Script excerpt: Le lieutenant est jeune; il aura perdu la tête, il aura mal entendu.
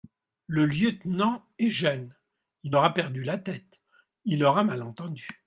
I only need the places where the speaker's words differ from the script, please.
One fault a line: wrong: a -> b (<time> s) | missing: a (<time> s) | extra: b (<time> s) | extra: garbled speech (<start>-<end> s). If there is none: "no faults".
no faults